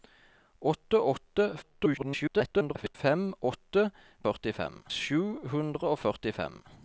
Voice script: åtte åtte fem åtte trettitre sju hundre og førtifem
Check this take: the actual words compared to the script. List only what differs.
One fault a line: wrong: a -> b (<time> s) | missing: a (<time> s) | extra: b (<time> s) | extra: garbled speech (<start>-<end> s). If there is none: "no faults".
extra: garbled speech (1.6-3.0 s)
wrong: trettitre -> førtifem (4.3 s)